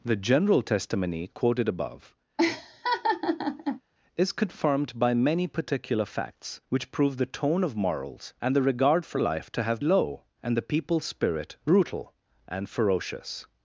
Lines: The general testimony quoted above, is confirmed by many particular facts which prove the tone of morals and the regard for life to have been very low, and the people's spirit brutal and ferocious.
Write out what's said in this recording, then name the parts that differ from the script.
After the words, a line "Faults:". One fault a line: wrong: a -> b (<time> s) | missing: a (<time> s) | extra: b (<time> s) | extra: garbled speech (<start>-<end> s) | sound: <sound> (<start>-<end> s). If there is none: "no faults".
The general testimony quoted above, is confirmed by many particular facts which prove the tone of morals and the regard for life to have low, and the people's spirit brutal and ferocious.
Faults:
sound: laugh (2.4-3.8 s)
missing: been very (9.8 s)